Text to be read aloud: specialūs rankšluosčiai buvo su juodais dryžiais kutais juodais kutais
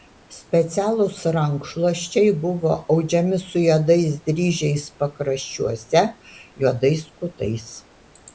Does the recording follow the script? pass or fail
fail